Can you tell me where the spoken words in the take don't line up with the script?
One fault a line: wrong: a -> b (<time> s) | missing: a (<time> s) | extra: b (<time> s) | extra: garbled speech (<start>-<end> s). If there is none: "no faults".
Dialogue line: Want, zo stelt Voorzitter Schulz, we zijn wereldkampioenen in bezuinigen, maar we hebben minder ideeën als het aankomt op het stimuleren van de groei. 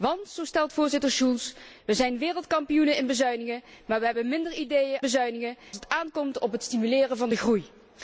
wrong: als -> bezuinigen (5.0 s)